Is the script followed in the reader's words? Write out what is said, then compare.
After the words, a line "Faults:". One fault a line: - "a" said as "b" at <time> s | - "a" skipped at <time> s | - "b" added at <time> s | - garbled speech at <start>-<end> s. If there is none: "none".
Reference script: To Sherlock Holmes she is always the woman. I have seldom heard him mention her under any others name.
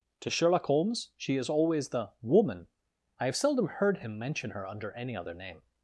To Sherlock Holmes she is always the woman. I have seldom heard him mention her under any other name.
Faults:
- "others" said as "other" at 5.2 s